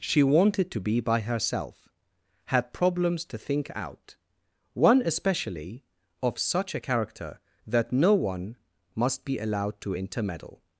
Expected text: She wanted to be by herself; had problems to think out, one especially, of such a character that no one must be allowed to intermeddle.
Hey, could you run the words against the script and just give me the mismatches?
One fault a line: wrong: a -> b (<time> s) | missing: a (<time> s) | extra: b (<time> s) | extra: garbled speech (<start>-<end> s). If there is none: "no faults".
no faults